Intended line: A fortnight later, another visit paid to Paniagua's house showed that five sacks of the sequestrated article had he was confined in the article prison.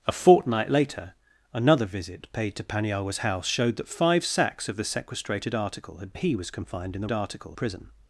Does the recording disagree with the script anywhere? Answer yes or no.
no